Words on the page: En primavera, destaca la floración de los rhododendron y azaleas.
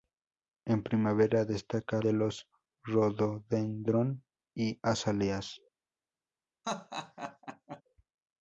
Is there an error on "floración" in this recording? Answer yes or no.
yes